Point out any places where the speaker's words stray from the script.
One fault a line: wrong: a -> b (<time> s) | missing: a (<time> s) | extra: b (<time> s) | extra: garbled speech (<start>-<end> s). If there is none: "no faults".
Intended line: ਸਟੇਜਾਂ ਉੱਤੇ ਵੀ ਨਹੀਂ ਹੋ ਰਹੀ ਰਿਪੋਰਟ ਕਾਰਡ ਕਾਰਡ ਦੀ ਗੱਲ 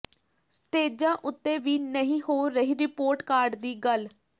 missing: ਕਾਰਡ (3.5 s)